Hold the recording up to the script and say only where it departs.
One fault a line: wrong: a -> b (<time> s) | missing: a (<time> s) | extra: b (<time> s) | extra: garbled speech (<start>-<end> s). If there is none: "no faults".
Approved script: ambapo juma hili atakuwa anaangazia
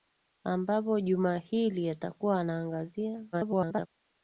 extra: garbled speech (3.3-3.9 s)